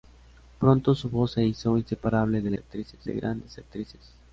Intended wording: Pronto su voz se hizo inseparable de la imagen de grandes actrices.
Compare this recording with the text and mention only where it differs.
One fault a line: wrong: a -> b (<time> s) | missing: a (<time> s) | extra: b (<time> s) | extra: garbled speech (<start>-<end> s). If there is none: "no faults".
wrong: imagen -> actrices (2.6 s)